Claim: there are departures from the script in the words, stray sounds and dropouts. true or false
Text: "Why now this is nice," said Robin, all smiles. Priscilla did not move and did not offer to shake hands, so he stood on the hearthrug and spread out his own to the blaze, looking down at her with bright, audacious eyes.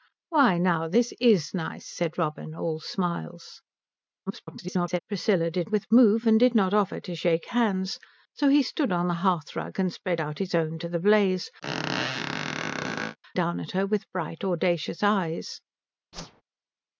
true